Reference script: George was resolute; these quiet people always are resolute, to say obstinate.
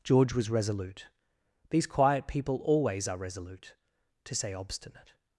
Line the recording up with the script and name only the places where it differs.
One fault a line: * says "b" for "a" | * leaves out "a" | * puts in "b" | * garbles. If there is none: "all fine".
all fine